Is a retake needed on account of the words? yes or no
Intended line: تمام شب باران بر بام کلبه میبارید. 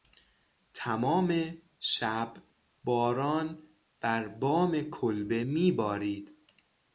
no